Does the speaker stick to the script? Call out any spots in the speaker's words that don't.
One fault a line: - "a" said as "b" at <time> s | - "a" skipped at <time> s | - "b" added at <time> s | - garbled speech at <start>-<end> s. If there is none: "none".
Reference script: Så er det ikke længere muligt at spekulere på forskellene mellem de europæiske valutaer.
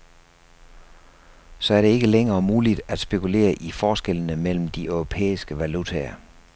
- "på" said as "i" at 3.5 s